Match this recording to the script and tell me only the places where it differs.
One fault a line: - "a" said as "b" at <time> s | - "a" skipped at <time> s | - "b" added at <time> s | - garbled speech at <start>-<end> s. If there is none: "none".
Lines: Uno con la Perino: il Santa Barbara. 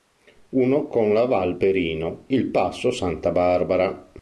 - "val" added at 1.2 s
- "passo" added at 2.5 s